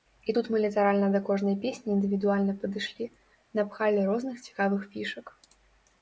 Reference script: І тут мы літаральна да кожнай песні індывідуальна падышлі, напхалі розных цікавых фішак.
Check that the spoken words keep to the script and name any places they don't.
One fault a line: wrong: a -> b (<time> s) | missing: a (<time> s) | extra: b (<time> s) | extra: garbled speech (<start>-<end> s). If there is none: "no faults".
no faults